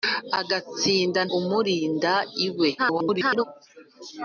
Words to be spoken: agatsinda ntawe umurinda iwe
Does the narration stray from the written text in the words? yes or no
yes